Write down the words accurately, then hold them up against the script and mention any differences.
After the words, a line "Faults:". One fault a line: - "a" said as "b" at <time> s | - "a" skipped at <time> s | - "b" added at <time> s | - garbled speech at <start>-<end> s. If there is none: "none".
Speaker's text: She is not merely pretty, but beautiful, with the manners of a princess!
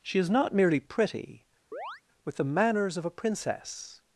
She is not merely pretty, with the manners of a princess!
Faults:
- "but beautiful" skipped at 1.4 s